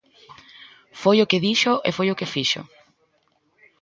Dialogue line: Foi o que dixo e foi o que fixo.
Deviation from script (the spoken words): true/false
false